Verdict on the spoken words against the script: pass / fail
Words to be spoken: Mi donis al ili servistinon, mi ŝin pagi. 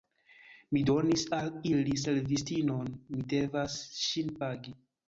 fail